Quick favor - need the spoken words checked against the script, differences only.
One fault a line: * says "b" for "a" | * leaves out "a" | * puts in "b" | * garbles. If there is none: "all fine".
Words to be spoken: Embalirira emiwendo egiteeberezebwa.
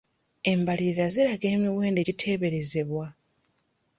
* puts in "ziraga"